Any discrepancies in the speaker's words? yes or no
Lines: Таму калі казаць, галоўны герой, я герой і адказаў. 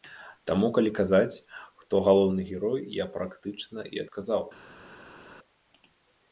yes